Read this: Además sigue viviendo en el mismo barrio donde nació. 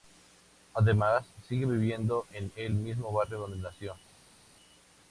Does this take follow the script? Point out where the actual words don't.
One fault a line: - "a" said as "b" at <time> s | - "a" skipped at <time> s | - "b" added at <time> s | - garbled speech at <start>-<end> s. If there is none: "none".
none